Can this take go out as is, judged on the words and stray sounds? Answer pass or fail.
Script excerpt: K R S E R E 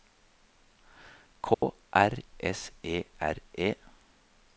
fail